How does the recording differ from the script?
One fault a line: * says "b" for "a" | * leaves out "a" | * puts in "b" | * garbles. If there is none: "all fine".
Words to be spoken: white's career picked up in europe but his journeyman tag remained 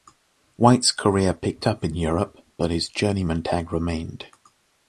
all fine